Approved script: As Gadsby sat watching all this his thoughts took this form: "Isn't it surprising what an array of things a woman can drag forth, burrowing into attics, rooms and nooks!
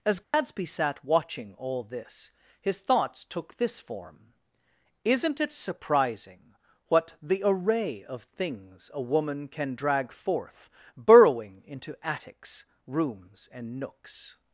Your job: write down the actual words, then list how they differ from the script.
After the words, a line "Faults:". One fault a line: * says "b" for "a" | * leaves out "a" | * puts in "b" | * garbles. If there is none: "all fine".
As Gadsby sat watching all this his thoughts took this form: "Isn't it surprising what the array of things a woman can drag forth, burrowing into attics, rooms and nooks!
Faults:
* says "the" for "an"